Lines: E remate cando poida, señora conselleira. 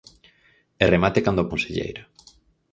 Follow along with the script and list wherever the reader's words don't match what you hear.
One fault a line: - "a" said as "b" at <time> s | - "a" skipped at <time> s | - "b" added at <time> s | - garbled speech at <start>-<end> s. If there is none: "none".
- "poida señora" skipped at 1.5 s